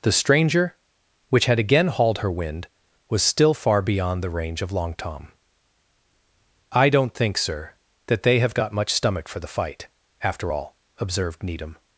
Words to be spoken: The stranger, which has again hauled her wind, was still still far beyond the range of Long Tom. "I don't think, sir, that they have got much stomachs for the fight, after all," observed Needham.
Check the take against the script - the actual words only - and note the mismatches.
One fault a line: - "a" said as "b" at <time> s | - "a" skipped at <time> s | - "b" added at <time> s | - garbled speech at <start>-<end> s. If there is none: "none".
- "has" said as "had" at 1.4 s
- "still" skipped at 3.5 s
- "stomachs" said as "stomach" at 8.9 s